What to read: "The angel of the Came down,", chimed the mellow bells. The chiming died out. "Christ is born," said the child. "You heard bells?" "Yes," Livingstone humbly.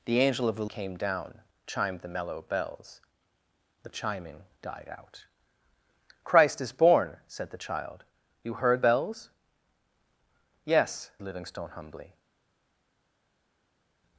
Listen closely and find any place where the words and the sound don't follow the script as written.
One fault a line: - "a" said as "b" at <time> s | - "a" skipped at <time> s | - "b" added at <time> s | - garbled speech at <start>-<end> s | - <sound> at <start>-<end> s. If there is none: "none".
none